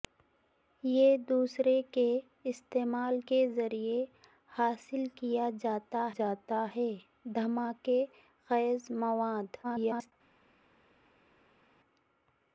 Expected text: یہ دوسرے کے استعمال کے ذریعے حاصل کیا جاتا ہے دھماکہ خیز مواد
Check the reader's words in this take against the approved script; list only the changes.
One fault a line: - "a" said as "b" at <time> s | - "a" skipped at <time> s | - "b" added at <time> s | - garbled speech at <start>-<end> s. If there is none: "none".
- "جاتا" added at 6.2 s
- garbled speech at 9.6-10.1 s